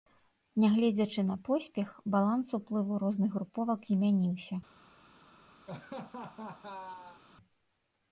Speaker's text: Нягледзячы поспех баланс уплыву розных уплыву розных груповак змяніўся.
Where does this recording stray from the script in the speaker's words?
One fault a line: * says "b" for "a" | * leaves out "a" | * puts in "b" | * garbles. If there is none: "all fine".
* puts in "на"
* leaves out "уплыву розных"